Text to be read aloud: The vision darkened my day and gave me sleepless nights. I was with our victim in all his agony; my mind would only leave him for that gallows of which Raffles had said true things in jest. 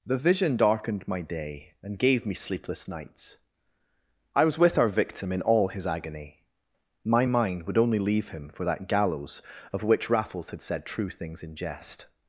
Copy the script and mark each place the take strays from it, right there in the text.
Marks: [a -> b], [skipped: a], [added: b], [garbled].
The vision darkened my day and gave me sleepless nights. I was with our victim in all his agony; my mind would only leave him for that gallows of which Raffles had said true things in jest.